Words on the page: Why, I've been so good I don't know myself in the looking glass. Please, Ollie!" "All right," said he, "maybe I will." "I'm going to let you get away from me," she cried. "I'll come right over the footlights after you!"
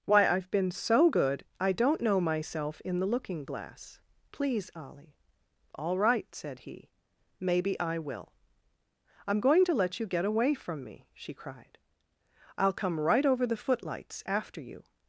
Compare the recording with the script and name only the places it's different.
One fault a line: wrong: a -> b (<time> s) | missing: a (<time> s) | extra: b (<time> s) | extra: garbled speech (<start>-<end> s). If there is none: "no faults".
no faults